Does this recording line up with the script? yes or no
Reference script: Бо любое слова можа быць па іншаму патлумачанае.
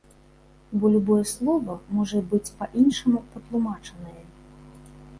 yes